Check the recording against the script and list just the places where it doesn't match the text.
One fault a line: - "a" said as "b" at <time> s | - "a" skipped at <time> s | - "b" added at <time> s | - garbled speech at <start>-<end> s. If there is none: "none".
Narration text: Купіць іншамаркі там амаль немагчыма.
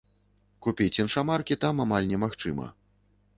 none